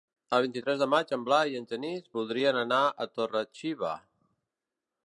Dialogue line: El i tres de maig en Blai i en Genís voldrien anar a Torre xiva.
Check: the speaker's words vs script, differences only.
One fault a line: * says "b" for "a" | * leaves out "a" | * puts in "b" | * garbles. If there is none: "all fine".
* puts in "vint"